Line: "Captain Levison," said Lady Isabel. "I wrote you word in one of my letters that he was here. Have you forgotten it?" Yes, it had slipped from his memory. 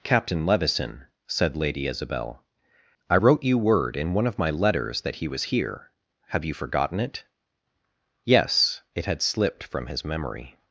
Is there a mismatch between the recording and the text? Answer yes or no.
no